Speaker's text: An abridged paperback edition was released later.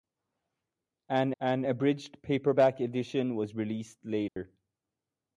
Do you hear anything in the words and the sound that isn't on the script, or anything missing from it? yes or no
yes